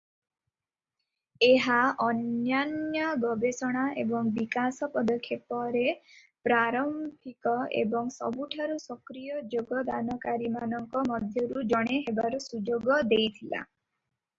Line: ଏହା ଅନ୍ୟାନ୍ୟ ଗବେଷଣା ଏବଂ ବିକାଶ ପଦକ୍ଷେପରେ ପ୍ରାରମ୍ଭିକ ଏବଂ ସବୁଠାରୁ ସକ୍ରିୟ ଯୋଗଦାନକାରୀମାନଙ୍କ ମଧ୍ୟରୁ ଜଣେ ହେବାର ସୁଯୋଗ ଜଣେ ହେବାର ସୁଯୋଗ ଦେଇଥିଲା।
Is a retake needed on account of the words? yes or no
yes